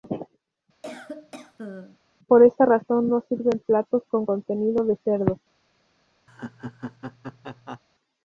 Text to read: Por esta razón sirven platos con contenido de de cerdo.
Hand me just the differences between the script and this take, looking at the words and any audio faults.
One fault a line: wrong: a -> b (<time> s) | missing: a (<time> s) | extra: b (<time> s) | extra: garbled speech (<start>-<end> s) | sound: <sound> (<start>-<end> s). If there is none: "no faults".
sound: cough (0.8-2.0 s)
extra: no (3.1 s)
missing: de (5.0 s)
sound: laugh (6.3-7.8 s)